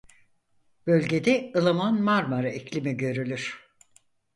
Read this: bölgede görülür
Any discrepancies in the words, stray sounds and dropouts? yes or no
yes